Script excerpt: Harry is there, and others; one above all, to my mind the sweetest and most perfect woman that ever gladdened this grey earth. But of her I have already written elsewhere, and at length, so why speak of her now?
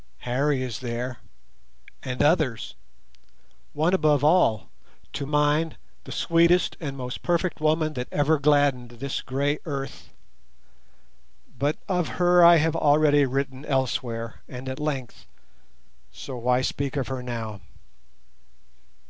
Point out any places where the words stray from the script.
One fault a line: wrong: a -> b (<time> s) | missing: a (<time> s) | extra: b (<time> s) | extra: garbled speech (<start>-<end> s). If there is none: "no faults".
missing: my (5.3 s)